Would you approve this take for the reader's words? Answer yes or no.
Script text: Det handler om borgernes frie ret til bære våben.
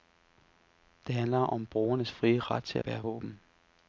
yes